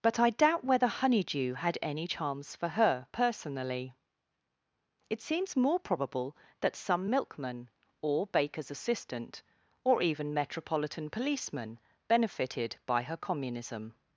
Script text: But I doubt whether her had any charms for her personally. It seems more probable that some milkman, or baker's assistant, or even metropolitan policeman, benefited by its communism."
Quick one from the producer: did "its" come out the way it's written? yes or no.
no